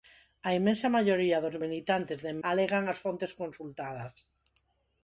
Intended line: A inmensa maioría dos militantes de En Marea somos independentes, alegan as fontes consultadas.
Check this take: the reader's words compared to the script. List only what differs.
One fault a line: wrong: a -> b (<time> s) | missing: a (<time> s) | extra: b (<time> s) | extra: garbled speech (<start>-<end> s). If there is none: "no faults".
missing: Marea somos independentes (2.4 s)